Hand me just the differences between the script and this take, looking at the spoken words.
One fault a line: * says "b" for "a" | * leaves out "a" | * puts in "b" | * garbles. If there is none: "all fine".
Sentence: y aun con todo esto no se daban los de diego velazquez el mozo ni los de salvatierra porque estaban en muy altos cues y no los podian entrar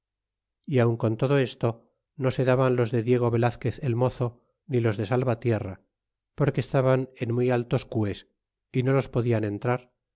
all fine